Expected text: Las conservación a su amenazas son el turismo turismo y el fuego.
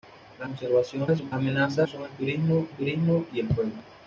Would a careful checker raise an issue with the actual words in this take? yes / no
no